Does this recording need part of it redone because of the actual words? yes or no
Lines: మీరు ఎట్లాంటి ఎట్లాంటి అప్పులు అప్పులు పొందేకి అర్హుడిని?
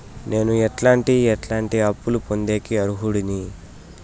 yes